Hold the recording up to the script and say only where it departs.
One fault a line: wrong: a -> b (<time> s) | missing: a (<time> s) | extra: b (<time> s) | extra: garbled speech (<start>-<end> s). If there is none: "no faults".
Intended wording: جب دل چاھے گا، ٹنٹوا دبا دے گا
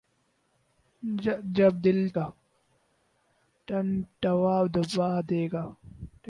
missing: چاھے (2.0 s)